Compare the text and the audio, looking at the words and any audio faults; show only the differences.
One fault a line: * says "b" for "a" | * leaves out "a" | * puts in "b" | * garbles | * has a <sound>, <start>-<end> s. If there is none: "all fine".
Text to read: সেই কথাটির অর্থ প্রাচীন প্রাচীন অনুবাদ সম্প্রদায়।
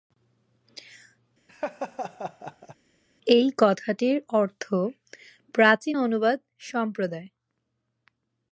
* has a laugh, 1.5-2.8 s
* says "এই" for "সেই"
* leaves out "প্রাচীন"